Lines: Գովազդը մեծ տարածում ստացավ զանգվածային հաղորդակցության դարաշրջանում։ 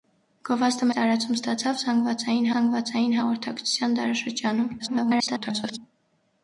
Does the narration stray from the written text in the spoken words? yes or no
yes